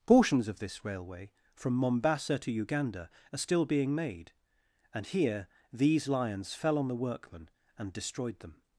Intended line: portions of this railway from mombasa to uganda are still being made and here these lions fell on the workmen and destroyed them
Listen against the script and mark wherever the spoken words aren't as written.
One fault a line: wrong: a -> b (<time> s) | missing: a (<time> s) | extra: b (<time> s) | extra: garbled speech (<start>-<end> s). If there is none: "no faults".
no faults